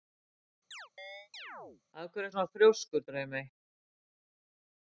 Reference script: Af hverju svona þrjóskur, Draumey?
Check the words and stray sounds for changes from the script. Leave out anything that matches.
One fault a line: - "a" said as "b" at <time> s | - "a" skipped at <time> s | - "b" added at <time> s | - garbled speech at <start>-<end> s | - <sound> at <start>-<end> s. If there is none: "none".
- chirp at 0.7-1.8 s